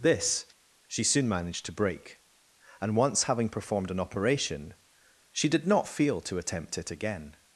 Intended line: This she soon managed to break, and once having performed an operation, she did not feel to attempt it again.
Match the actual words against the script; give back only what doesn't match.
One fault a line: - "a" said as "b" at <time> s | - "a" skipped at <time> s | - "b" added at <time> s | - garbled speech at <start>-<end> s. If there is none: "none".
none